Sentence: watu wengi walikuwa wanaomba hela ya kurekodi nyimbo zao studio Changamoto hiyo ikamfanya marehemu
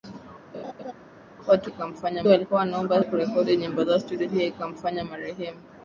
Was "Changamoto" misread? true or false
true